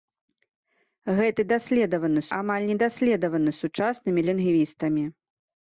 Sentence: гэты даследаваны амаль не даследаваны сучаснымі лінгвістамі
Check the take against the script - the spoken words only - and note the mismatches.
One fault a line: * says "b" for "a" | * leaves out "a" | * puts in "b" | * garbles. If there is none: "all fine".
all fine